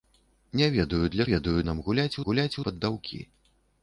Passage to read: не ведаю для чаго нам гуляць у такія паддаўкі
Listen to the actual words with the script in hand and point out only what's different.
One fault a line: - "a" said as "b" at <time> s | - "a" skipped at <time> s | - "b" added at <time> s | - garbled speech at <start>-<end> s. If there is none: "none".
- "чаго" said as "ведаю" at 1.3 s
- "такія" said as "гуляць" at 2.3 s